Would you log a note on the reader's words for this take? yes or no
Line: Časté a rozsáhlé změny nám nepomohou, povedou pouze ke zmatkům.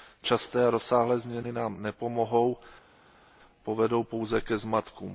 no